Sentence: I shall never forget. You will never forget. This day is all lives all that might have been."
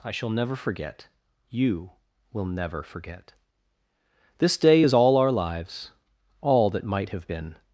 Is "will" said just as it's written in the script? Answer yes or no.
yes